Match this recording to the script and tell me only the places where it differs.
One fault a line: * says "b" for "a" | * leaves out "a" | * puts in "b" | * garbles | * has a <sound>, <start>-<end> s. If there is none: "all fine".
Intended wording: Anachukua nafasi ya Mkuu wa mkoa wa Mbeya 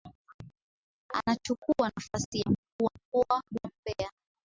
all fine